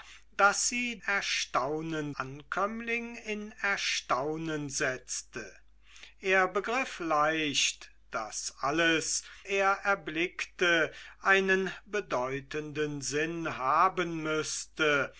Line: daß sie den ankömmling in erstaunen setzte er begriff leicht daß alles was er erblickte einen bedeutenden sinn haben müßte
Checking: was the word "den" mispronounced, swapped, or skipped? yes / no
yes